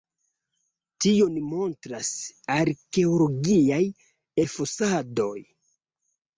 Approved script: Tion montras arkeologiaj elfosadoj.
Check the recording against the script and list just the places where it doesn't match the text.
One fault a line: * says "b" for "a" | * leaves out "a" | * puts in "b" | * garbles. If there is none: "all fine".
all fine